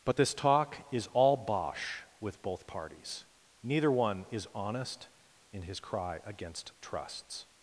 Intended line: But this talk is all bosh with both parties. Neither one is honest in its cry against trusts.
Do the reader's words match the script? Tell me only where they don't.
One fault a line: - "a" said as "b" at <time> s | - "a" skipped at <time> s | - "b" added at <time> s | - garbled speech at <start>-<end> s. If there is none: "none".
- "its" said as "his" at 5.6 s